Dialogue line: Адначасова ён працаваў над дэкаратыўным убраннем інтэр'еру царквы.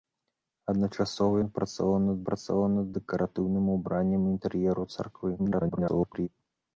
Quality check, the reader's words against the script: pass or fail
fail